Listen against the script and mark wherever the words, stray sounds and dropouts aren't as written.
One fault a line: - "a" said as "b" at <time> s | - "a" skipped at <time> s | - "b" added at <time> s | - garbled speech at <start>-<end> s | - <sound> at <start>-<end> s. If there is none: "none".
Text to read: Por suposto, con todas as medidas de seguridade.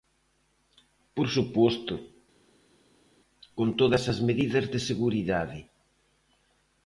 none